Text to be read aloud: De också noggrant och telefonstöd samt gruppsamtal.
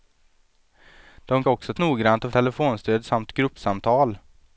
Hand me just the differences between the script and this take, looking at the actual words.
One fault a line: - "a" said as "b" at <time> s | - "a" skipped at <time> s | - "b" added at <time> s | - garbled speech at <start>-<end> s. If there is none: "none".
none